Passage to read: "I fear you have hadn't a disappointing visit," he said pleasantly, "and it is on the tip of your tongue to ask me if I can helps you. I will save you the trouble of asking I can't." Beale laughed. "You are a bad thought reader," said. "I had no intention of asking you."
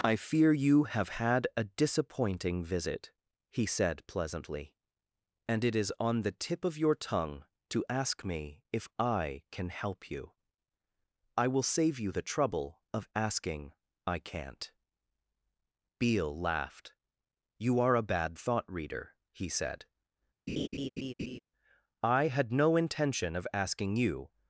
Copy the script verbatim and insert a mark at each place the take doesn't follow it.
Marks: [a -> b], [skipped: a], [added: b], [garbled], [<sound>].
"I fear you have [hadn't -> had] a disappointing visit," he said pleasantly, "and it is on the tip of your tongue to ask me if I can [helps -> help] you. I will save you the trouble of asking I can't." Beale laughed. "You are a bad thought reader," [added: he] said. [laugh] "I had no intention of asking you."